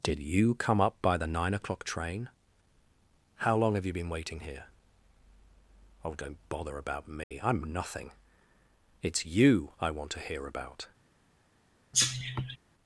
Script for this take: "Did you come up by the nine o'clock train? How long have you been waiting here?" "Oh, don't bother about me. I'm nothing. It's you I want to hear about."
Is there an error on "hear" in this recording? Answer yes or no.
no